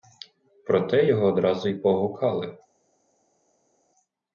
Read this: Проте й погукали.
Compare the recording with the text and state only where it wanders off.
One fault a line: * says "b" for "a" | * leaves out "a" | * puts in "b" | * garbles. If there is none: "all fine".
* puts in "його одразу"